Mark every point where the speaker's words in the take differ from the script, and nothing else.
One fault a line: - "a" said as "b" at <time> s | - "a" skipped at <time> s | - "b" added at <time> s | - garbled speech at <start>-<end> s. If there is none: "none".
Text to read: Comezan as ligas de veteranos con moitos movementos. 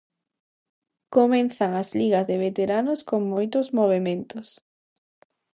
none